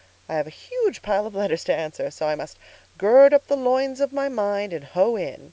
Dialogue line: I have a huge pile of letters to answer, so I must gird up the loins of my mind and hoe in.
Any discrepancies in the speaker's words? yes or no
no